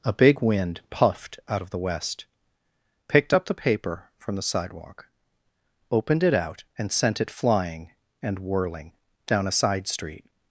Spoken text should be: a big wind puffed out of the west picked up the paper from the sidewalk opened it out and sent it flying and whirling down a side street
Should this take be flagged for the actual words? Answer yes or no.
no